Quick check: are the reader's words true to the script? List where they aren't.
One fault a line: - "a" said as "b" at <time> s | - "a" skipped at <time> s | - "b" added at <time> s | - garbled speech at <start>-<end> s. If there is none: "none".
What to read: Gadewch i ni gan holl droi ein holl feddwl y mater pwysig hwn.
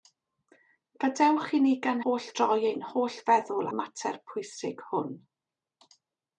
none